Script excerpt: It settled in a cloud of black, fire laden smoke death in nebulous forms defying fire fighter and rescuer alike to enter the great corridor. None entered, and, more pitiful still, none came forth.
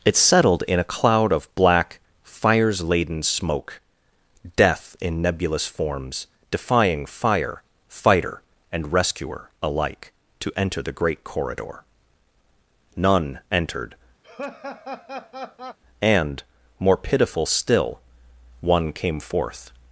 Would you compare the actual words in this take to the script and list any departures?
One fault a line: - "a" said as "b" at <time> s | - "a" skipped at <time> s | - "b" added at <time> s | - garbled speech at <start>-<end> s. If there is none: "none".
- "fire" said as "fires" at 2.2 s
- "none" said as "one" at 18.6 s